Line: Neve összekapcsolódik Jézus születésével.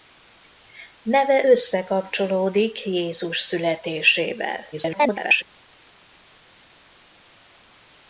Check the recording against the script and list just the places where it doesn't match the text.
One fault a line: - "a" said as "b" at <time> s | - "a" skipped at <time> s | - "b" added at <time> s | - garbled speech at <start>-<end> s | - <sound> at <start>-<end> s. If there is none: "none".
- garbled speech at 4.7-5.4 s